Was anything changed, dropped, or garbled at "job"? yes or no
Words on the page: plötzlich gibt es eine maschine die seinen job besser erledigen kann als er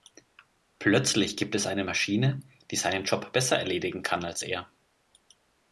no